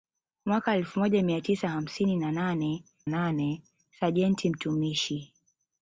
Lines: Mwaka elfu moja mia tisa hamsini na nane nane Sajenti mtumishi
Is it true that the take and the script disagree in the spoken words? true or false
false